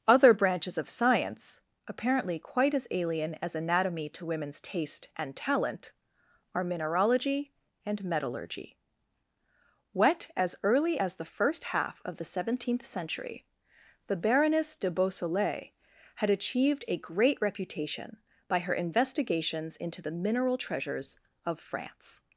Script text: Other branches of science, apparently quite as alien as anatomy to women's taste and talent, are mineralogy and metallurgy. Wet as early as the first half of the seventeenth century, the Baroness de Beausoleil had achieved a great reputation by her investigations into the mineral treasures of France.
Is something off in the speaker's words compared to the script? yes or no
no